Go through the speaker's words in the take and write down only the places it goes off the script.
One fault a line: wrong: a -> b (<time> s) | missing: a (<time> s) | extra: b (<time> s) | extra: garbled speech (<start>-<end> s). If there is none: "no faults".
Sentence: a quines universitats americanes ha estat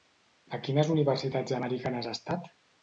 no faults